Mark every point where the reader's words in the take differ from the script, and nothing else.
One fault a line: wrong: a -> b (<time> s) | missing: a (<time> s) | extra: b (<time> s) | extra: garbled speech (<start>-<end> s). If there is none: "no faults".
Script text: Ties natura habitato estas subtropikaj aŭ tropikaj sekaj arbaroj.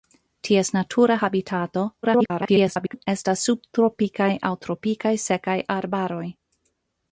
extra: garbled speech (2.0-3.1 s)